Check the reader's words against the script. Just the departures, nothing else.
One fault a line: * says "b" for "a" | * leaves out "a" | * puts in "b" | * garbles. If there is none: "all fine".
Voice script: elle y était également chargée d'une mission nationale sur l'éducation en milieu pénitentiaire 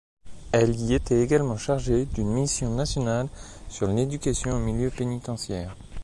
all fine